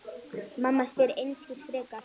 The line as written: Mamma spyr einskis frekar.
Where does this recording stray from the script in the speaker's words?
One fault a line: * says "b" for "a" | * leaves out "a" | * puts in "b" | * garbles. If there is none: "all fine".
all fine